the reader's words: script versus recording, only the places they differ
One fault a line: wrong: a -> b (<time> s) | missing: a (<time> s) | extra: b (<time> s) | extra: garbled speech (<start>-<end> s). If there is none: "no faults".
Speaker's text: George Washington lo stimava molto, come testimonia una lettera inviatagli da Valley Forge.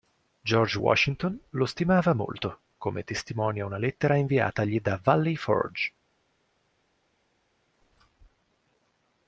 no faults